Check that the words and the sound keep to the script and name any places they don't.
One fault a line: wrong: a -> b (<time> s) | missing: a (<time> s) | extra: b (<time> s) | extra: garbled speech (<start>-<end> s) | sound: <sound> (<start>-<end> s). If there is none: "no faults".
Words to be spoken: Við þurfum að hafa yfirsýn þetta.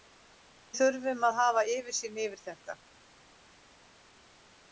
extra: yfir (2.3 s)